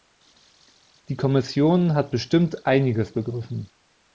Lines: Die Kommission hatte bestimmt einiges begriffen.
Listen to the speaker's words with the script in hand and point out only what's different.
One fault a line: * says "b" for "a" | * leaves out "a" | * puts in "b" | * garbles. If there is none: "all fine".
* says "hat" for "hatte"